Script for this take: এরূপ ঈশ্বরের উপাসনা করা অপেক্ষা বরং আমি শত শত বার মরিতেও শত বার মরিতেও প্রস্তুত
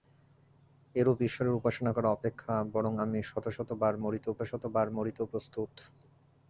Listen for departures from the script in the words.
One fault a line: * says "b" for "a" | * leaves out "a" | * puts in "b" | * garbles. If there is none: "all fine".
all fine